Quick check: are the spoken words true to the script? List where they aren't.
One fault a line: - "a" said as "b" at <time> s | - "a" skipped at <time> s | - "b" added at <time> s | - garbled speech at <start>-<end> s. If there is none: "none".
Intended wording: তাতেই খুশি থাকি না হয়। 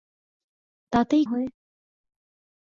- "খুশি থাকি না" skipped at 1.2 s